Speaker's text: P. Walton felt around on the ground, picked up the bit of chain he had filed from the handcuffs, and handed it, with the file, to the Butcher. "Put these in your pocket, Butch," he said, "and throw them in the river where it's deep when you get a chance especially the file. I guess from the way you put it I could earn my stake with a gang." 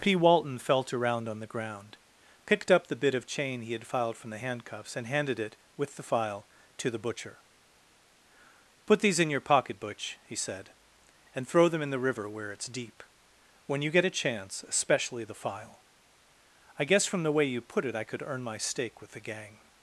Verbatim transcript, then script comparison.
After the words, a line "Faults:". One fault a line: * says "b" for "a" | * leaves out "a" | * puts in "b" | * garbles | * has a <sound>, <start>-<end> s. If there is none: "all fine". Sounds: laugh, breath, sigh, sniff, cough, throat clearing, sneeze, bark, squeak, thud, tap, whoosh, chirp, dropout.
P. Walton felt around on the ground, picked up the bit of chain he had filed from the handcuffs, and handed it, with the file, to the Butcher. "Put these in your pocket, Butch," he said, "and throw them in the river where it's deep when you get a chance especially the file. I guess from the way you put it I could earn my stake with the gang."
Faults:
* says "the" for "a"